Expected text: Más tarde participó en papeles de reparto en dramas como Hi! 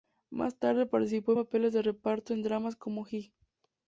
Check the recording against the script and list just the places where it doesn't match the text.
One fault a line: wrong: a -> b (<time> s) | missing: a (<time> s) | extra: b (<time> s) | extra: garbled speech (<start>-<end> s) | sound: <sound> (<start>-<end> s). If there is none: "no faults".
no faults